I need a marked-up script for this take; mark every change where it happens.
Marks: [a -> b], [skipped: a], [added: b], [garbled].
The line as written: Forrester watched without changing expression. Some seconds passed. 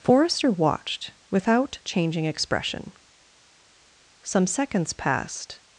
Forrester watched without changing expression. Some seconds passed.